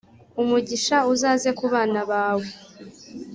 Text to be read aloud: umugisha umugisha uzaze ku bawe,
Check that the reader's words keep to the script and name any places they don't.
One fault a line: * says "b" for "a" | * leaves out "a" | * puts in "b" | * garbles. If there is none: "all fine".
* leaves out "umugisha"
* puts in "bana"